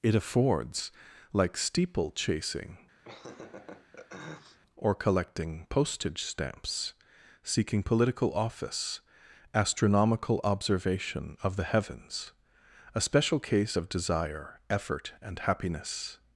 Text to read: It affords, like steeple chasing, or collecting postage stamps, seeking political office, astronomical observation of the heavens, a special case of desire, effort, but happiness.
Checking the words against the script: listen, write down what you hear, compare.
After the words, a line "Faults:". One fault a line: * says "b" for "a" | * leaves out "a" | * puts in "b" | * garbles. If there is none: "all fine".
It affords, like steeple chasing, or collecting postage stamps, seeking political office, astronomical observation of the heavens, a special case of desire, effort, and happiness.
Faults:
* says "and" for "but"